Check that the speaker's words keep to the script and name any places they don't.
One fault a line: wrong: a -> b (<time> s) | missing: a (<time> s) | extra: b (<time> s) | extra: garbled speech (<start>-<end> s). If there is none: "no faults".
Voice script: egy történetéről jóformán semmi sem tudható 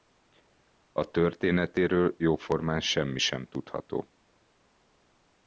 wrong: egy -> a (0.9 s)